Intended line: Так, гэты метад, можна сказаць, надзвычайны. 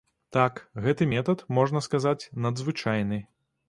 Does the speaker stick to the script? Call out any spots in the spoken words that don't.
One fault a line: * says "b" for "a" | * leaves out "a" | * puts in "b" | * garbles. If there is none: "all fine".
all fine